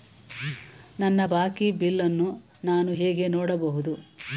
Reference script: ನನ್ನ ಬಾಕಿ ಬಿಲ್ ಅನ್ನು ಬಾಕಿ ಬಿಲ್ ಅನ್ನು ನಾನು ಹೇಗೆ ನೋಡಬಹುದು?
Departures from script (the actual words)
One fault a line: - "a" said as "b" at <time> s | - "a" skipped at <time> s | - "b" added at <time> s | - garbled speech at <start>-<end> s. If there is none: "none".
- "ಬಾಕಿ ಬಿಲ್ ಅನ್ನು" skipped at 2.3 s